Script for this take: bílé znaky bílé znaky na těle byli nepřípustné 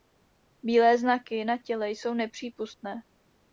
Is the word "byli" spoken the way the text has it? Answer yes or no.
no